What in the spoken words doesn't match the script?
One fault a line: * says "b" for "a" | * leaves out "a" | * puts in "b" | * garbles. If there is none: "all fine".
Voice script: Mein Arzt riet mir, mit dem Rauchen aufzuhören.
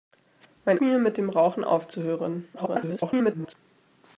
* leaves out "Arzt riet"
* garbles